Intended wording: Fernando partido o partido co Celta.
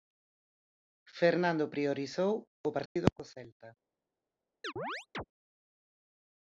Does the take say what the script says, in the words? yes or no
no